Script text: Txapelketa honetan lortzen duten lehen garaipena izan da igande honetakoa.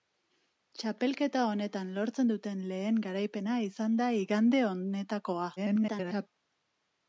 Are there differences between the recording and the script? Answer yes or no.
yes